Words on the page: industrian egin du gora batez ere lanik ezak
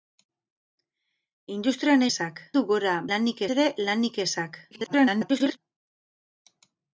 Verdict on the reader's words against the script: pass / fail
fail